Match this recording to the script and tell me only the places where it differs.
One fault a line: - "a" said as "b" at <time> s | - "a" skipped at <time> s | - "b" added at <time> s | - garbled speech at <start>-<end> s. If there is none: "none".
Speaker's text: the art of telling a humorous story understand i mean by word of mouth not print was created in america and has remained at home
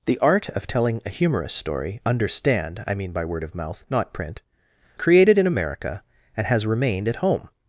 - "was" skipped at 4.4 s